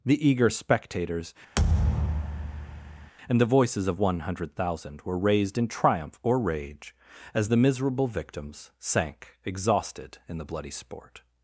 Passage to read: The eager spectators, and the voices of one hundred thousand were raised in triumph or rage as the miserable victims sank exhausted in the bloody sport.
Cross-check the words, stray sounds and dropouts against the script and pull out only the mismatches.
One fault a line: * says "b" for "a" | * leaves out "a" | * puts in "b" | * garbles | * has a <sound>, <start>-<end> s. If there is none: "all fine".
* has a thud, 1.6-3.1 s